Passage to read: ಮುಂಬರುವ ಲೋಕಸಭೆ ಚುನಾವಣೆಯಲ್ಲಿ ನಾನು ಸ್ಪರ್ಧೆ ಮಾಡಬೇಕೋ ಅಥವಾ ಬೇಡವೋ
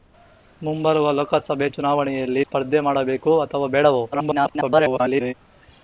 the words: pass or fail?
fail